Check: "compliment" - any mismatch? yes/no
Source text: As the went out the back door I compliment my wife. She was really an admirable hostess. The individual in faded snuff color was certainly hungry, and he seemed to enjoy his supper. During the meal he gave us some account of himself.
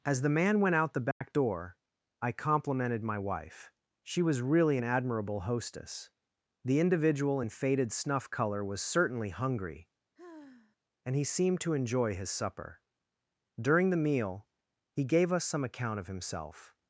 yes